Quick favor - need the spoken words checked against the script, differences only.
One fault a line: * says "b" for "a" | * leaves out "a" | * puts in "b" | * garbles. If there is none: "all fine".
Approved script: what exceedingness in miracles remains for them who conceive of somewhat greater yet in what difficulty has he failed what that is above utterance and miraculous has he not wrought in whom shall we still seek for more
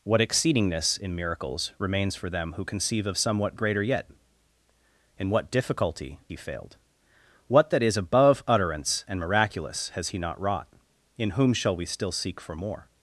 * leaves out "has"